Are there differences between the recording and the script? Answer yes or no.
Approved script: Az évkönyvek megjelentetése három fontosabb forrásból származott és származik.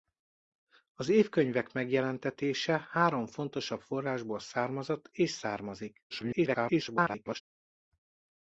yes